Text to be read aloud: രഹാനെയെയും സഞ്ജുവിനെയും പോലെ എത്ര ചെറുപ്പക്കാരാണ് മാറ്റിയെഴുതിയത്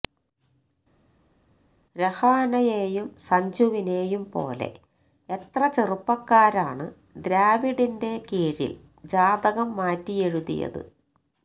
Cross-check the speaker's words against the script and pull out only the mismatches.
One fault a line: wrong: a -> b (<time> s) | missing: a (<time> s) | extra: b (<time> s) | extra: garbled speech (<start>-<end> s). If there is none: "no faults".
extra: ദ്രാവിഡിന്റെ കീഴില് ജാതകം (7.2 s)